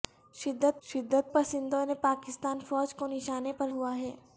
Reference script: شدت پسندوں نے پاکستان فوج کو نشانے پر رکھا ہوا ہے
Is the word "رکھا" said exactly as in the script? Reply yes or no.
no